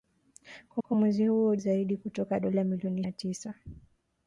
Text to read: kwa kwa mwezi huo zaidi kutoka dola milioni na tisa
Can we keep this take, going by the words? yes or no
yes